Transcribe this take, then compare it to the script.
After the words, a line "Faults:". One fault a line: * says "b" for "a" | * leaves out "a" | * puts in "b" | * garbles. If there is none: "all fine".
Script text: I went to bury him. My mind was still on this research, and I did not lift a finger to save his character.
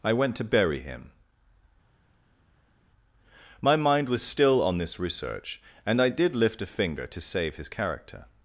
I went to bury him. My mind was still on this research, and I did lift a finger to save his character.
Faults:
* leaves out "not"